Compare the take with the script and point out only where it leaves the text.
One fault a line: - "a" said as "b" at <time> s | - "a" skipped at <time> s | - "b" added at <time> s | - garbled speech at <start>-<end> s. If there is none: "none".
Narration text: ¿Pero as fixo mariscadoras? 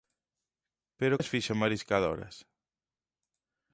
none